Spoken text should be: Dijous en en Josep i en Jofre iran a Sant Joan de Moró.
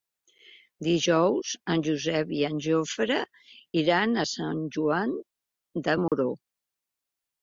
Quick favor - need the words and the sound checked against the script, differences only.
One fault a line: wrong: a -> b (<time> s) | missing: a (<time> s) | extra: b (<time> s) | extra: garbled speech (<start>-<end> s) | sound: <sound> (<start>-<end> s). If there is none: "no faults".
missing: en (1.8 s)
sound: dropout (6.1-6.1 s)